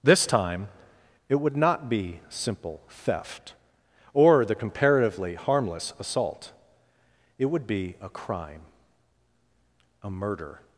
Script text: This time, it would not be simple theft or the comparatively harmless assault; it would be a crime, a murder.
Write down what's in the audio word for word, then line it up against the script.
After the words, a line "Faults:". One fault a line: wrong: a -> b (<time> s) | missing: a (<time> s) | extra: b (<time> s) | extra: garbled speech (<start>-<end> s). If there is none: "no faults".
This time, it would not be simple theft or the comparatively harmless assault; it would be a crime, a murder.
Faults:
no faults